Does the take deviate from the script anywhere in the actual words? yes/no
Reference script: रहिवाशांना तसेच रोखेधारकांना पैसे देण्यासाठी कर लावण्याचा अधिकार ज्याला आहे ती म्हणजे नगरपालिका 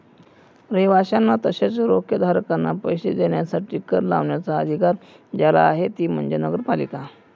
no